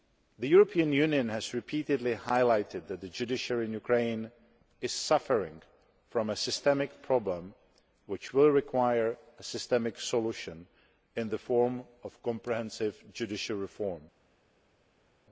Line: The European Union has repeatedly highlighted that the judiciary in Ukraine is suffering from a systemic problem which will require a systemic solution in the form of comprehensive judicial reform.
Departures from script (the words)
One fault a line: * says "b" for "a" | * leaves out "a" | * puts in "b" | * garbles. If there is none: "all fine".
all fine